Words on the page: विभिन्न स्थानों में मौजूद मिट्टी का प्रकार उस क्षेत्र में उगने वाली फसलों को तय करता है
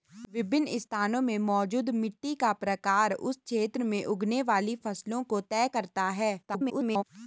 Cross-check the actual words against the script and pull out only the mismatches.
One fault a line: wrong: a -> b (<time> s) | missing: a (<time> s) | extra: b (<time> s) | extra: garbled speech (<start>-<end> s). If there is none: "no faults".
extra: garbled speech (6.4-7.0 s)